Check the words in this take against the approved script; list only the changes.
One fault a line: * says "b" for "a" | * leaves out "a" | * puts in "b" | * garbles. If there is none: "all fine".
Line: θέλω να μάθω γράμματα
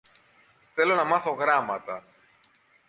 all fine